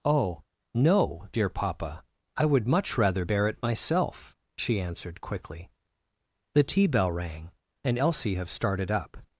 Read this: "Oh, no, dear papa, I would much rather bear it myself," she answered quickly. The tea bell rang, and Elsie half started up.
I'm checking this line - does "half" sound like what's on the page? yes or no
no